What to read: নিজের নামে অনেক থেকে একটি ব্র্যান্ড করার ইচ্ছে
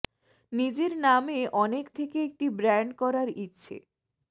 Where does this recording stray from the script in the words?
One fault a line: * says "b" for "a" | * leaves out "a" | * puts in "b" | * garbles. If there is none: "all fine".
all fine